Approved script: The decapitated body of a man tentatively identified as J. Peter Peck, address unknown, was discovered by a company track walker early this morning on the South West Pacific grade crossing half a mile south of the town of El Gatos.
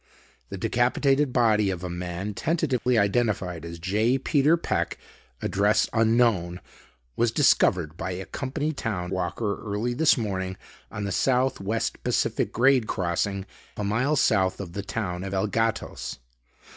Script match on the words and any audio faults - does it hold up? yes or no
no